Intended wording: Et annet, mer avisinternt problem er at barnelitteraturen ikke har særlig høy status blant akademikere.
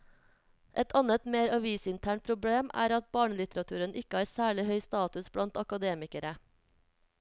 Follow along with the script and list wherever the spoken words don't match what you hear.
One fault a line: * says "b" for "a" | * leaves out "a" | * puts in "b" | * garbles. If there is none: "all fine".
all fine